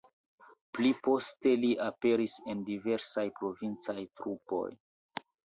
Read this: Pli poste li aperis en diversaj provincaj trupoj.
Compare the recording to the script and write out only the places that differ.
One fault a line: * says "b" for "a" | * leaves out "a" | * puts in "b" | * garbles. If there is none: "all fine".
all fine